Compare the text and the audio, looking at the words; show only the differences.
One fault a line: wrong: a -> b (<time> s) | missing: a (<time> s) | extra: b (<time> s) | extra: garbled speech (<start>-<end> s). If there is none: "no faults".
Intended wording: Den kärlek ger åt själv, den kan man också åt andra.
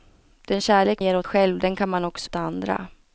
no faults